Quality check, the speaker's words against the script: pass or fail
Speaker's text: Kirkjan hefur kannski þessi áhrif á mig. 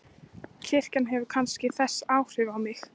pass